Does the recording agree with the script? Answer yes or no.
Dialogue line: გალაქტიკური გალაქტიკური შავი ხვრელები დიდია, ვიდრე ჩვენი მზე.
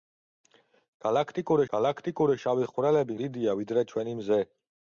yes